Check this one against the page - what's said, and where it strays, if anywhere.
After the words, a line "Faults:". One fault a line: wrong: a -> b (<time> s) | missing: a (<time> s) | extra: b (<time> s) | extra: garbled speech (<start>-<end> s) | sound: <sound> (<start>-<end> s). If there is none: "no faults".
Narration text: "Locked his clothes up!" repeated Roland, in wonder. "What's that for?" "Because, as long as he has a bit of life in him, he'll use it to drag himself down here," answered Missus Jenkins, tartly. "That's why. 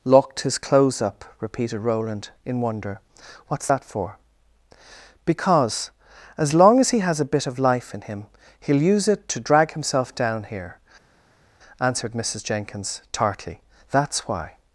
"Locked his clothes up!" repeated Roland, in wonder. "What's that for?" "Because, as long as he has a bit of life in him, he'll use it to drag himself down here," answered Missus Jenkins, tartly. "That's why.
Faults:
no faults